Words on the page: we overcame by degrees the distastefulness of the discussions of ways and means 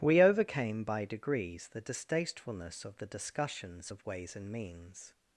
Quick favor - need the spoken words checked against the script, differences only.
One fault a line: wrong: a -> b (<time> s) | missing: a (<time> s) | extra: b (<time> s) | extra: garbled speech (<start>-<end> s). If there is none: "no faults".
no faults